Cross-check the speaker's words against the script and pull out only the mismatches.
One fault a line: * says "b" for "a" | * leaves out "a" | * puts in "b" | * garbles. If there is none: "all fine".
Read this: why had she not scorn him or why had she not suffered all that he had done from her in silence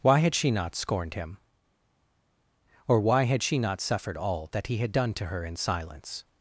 * says "scorned" for "scorn"
* says "to" for "from"